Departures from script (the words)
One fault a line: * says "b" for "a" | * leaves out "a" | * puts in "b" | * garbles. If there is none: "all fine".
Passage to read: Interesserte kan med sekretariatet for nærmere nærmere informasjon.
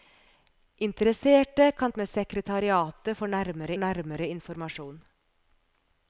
all fine